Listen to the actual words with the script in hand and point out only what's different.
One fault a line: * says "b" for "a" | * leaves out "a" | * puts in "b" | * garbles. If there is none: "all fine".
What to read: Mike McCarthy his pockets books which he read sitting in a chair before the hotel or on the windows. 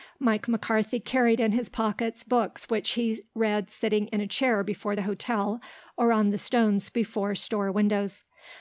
* puts in "carried in"
* puts in "stones before store"